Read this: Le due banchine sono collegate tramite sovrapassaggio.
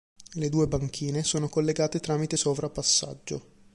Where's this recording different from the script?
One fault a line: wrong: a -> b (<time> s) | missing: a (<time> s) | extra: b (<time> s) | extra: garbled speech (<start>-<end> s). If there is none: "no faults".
no faults